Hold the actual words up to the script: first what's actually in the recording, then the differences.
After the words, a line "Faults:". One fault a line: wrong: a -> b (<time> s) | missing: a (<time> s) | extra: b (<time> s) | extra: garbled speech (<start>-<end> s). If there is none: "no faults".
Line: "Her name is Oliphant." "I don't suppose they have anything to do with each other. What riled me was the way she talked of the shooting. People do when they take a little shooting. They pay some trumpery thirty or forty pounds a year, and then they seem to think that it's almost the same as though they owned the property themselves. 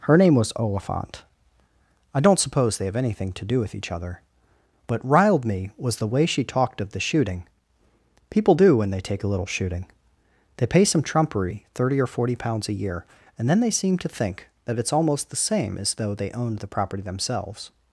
"Her name was Oliphant." "I don't suppose they have anything to do with each other. What riled me was the way she talked of the shooting. People do when they take a little shooting. They pay some trumpery thirty or forty pounds a year, and then they seem to think that it's almost the same as though they owned the property themselves.
Faults:
wrong: is -> was (0.3 s)